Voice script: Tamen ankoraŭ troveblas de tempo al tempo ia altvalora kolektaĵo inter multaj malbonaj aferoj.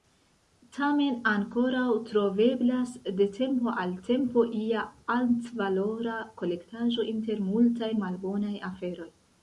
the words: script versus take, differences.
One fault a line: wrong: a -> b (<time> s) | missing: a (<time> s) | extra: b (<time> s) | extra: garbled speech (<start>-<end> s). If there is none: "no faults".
no faults